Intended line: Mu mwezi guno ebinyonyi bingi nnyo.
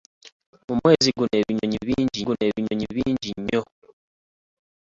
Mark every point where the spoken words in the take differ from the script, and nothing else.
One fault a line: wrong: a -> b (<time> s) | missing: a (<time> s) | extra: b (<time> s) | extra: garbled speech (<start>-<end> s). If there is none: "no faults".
extra: guno ebinyonyi bingi (2.2 s)